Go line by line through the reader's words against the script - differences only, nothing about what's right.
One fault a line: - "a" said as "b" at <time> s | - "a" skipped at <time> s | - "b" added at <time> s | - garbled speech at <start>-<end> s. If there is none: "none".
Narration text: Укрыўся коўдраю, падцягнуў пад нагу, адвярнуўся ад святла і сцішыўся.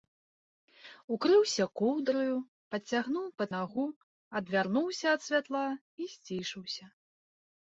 none